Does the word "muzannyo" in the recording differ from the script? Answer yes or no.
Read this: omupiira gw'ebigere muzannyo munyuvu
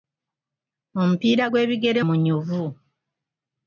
yes